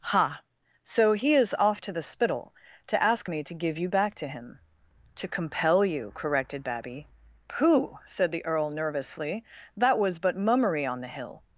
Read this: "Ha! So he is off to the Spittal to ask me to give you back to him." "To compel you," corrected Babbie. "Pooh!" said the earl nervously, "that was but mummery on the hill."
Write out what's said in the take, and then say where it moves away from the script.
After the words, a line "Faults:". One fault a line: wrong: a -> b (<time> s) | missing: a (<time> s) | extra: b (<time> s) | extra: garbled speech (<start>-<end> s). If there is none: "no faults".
"Ha! So he is off to the Spittal to ask me to give you back to him." "To compel you," corrected Babbie. "Pooh!" said the earl nervously, "that was but mummery on the hill."
Faults:
no faults